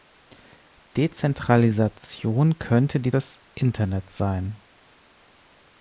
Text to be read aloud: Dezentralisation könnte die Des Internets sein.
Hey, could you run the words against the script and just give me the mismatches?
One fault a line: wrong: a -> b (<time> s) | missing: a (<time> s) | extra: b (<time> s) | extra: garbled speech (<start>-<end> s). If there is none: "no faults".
no faults